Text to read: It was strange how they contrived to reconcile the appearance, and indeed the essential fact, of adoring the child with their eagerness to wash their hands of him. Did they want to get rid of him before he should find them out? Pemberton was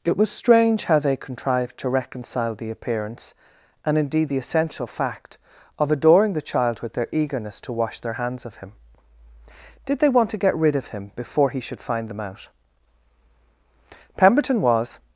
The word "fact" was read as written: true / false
true